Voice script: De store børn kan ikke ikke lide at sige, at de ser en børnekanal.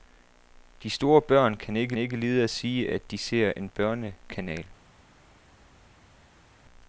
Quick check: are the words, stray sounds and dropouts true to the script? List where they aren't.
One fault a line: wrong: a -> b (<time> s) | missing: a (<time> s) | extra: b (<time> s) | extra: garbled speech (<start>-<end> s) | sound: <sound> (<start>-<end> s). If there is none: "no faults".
no faults